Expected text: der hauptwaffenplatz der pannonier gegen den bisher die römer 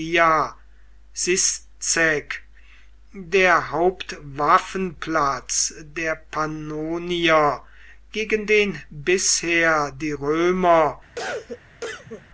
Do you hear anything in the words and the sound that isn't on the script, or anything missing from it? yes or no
yes